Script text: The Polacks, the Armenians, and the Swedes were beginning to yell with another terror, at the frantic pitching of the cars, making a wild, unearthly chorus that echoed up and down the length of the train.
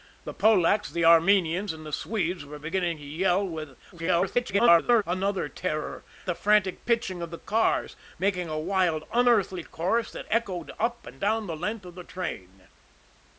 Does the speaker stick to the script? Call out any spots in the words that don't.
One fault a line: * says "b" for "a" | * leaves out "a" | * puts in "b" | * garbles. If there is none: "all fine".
* garbles
* leaves out "at"